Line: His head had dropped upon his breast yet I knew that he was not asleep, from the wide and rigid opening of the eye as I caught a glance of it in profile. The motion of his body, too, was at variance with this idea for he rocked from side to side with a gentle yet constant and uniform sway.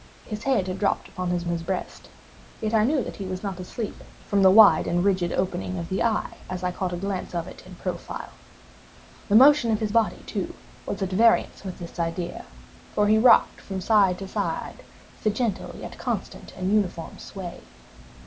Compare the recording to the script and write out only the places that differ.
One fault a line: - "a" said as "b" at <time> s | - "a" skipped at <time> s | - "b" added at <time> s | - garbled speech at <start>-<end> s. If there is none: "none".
- "his" added at 1.5 s